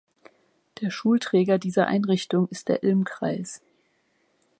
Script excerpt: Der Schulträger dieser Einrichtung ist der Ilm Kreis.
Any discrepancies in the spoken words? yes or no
no